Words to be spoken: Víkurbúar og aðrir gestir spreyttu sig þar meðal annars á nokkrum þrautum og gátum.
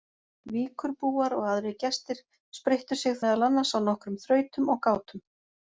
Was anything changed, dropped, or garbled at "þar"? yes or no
yes